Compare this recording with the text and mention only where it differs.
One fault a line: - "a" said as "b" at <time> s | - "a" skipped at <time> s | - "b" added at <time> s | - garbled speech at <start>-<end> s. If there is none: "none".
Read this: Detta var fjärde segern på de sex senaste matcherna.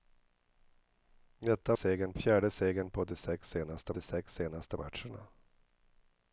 - "var" said as "segern" at 1.7 s
- "de sex senaste" added at 3.9 s